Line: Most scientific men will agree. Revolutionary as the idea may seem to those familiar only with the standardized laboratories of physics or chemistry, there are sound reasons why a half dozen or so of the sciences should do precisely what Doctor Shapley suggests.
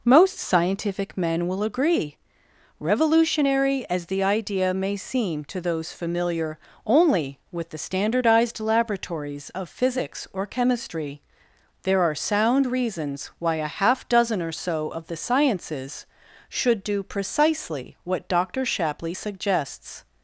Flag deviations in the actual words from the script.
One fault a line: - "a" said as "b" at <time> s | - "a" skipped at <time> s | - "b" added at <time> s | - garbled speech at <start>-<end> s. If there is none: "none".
none